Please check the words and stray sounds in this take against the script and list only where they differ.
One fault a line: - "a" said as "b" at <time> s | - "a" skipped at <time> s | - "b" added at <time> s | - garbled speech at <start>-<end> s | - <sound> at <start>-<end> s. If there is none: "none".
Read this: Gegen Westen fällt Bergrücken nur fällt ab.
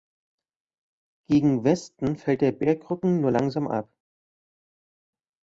- "der" added at 2.4 s
- "fällt" said as "langsam" at 3.3 s